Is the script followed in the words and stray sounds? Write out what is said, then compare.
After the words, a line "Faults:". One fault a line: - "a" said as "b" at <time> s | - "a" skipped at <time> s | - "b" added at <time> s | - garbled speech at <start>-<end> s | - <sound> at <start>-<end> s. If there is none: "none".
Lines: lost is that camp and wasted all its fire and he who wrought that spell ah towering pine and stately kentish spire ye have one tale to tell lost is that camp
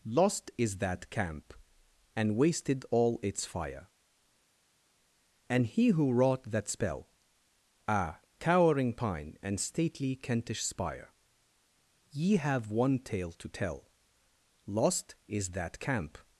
lost is that camp and wasted all its fire and he who wrought that spell ah towering pine and stately kentish spire ye have one tale to tell lost is that camp
Faults:
none